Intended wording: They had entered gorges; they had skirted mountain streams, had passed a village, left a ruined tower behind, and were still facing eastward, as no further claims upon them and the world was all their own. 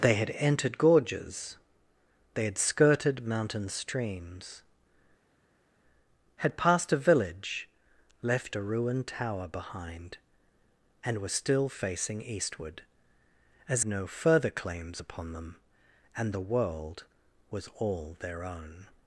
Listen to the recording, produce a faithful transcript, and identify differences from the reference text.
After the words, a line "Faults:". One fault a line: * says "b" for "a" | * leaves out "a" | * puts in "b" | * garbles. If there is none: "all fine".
They had entered gorges; they had skirted mountain streams, had passed a village, left a ruined tower behind, and were still facing eastward, as no further claims upon them and the world was all their own.
Faults:
all fine